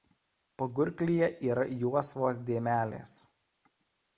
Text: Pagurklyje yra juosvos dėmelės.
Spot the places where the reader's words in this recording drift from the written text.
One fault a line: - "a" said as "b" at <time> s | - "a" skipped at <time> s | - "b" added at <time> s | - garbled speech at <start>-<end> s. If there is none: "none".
none